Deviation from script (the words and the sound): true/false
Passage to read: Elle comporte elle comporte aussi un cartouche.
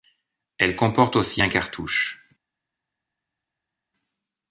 true